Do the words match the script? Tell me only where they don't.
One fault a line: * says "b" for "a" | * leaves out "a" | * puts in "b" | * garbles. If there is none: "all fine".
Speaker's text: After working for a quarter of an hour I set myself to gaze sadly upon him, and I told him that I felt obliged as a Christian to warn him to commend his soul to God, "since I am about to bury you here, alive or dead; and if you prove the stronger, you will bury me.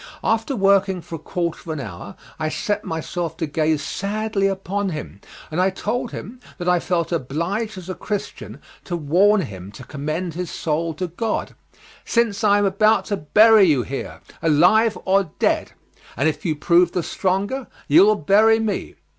all fine